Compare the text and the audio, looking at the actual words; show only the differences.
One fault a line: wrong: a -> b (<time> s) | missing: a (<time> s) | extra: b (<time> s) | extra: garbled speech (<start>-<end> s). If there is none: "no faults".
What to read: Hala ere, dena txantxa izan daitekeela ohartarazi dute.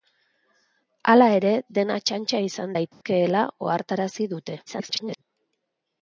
extra: garbled speech (4.7-5.2 s)